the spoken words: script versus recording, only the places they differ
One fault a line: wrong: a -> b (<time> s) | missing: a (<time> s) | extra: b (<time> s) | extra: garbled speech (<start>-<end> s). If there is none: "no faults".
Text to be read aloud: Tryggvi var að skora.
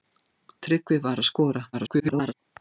extra: garbled speech (1.7-2.3 s)